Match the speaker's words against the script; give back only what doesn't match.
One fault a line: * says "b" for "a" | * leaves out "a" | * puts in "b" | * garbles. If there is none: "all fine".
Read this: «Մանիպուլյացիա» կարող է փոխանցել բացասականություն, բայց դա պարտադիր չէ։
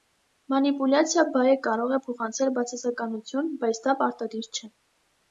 * puts in "բայը"